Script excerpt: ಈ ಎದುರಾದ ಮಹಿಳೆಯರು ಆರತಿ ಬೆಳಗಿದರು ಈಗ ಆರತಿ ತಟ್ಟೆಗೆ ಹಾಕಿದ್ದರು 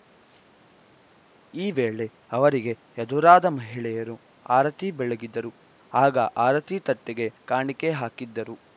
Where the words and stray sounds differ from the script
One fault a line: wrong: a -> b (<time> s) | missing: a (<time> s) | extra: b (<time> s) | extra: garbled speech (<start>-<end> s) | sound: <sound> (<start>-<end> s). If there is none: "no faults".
extra: ವೇಳೆ ಅವರಿಗೆ (1.7 s)
wrong: ಈಗ -> ಆಗ (5.9 s)
extra: ಕಾಣಿಕೆ (7.5 s)